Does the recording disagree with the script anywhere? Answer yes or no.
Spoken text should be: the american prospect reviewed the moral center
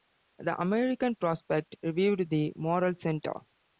no